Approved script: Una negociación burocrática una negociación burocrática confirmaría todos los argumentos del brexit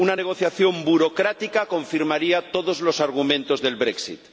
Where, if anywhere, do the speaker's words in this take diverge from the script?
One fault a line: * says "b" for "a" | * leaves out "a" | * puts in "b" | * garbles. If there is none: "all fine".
* leaves out "una negociación burocrática"